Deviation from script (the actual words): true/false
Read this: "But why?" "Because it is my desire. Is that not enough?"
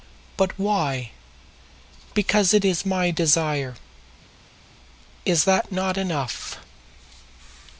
false